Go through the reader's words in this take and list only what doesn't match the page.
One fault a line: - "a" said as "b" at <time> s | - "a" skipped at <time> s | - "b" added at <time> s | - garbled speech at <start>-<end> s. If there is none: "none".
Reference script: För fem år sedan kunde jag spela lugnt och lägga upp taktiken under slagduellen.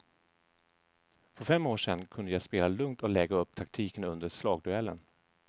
none